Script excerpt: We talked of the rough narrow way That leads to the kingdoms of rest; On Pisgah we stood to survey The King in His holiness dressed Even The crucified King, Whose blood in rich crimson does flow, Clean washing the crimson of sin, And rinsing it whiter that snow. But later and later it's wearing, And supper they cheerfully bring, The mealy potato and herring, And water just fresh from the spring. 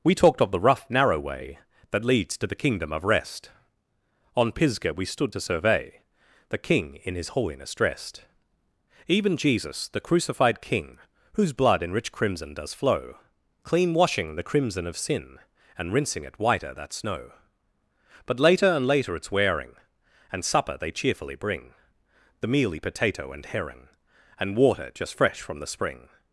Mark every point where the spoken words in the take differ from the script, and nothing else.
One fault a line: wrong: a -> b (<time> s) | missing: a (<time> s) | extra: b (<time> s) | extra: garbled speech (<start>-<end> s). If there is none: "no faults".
wrong: kingdoms -> kingdom (2.5 s)
extra: Jesus (9.4 s)